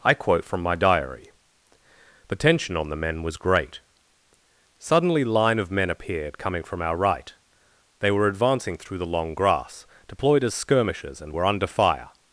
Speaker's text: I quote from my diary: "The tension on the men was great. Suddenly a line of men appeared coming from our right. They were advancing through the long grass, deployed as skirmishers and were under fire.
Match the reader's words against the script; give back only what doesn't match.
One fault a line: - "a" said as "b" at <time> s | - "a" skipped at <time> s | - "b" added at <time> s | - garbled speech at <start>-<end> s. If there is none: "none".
- "a" skipped at 5.2 s